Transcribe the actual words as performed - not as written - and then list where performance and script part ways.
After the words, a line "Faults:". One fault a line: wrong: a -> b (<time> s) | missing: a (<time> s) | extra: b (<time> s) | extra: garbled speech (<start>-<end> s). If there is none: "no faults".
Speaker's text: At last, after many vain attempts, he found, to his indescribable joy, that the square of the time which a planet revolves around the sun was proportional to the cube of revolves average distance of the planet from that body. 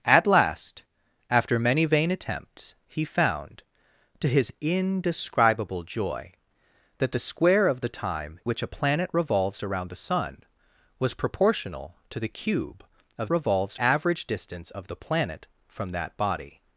At last, after many vain attempts, he found, to his indescribable joy, that the square of the time which a planet revolves around the sun was proportional to the cube of revolves average distance of the planet from that body.
Faults:
no faults